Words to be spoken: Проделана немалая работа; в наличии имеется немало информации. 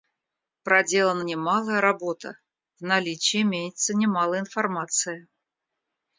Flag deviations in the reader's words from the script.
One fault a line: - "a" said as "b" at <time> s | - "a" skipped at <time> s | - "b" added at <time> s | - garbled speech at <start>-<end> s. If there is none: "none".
none